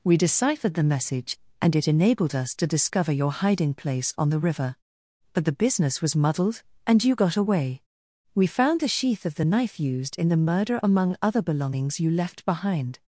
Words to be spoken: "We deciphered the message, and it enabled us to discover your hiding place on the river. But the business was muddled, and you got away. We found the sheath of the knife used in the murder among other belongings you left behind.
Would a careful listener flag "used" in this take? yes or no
no